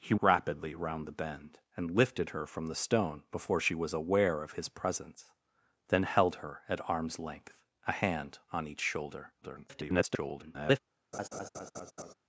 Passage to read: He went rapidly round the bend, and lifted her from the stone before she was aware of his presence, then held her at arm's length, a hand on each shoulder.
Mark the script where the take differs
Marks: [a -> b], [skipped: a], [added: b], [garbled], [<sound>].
He [skipped: went] rapidly round the bend, and lifted her from the stone before she was aware of his presence, then held her at arm's length, a hand on each shoulder. [garbled] [laugh]